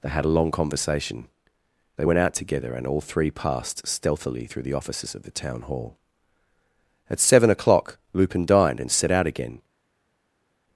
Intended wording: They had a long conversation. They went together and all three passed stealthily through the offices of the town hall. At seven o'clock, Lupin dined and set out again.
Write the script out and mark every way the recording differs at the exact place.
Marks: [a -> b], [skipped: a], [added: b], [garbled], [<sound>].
They had a long conversation. They went [added: out] together and all three passed stealthily through the offices of the town hall. At seven o'clock, Lupin dined and set out again.